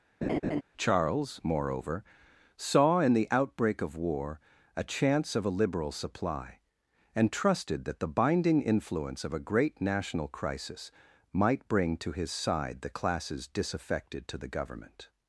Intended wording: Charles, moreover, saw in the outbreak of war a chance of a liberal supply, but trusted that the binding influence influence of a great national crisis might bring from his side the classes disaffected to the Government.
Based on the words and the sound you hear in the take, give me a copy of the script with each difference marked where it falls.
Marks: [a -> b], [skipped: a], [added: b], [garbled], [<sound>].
[laugh] Charles, moreover, saw in the outbreak of war a chance of a liberal supply, [but -> and] trusted that the binding influence [skipped: influence] of a great national crisis might bring [from -> to] his side the classes disaffected to the Government.